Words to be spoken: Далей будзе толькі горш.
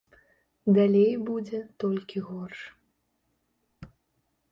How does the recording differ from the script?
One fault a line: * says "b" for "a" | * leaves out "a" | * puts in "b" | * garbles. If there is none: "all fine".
all fine